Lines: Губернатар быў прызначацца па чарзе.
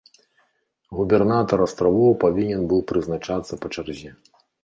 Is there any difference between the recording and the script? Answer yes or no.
yes